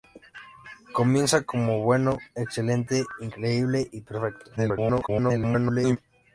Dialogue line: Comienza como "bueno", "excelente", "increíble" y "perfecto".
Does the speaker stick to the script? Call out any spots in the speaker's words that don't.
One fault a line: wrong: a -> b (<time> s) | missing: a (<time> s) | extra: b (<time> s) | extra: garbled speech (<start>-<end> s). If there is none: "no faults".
extra: garbled speech (4.6-6.0 s)